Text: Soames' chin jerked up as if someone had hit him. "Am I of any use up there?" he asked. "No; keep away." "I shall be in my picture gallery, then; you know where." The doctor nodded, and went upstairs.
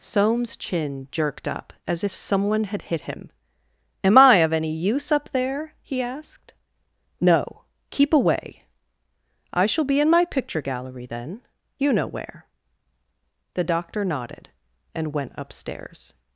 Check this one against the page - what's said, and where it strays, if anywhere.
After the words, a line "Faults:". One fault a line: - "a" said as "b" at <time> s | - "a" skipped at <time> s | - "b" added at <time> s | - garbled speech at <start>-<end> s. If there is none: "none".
Soames' chin jerked up as if someone had hit him. "Am I of any use up there?" he asked. "No; keep away." "I shall be in my picture gallery, then; you know where." The doctor nodded, and went upstairs.
Faults:
none